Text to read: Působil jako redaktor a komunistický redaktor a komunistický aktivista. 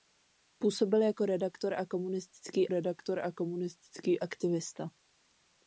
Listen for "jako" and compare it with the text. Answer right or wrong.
right